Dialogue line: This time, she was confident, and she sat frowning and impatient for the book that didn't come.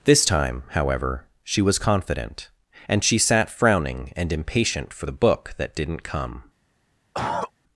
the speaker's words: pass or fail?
fail